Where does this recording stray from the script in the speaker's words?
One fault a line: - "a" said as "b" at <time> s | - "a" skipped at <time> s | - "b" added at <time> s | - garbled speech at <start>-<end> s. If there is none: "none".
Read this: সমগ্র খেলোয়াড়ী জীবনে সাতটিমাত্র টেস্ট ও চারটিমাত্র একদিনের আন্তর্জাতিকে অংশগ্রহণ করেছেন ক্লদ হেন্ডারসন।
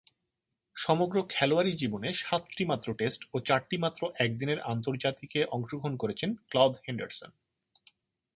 none